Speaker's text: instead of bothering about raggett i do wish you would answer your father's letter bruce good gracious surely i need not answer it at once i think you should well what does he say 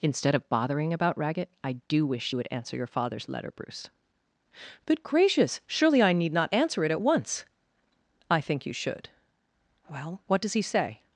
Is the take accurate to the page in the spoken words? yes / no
no